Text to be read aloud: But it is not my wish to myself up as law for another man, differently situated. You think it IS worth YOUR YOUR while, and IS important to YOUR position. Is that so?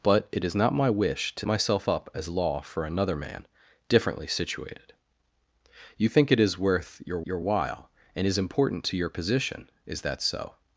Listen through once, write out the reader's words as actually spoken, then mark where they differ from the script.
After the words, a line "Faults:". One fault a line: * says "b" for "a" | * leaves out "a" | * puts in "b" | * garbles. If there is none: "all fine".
But it is not my wish to myself up as law for another man, differently situated. You think it IS worth YOUR YOUR while, and IS important to YOUR position. Is that so?
Faults:
all fine